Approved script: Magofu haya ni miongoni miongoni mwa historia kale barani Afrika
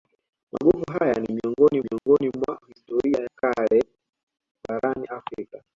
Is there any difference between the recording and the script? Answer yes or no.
no